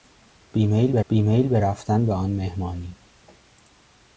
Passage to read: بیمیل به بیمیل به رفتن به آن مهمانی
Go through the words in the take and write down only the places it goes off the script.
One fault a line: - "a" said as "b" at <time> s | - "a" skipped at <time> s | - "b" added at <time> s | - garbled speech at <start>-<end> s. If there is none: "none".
none